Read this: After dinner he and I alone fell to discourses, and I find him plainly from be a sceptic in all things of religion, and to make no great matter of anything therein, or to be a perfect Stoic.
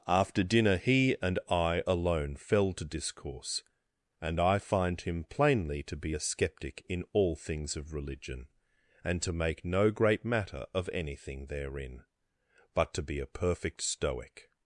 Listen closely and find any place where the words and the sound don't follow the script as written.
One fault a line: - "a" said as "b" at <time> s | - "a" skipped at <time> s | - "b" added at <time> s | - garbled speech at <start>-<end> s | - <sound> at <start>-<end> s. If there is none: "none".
- "discourses" said as "discourse" at 2.9 s
- "from" said as "to" at 5.8 s
- "or" said as "but" at 12.7 s